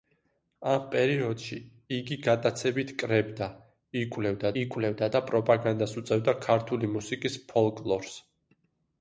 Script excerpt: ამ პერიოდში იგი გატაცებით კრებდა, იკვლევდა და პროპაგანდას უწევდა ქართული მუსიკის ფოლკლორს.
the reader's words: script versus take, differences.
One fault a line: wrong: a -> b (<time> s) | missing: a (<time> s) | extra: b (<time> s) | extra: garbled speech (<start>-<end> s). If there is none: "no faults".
extra: იკვლევდა (4.6 s)